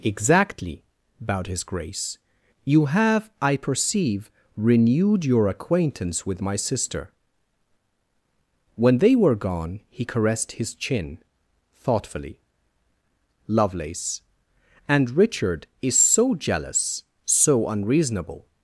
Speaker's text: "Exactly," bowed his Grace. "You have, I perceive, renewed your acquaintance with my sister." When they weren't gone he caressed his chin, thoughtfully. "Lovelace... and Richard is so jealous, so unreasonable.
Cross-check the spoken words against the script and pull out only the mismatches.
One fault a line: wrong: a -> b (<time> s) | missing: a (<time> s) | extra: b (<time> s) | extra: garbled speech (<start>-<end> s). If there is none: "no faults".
wrong: weren't -> were (9.2 s)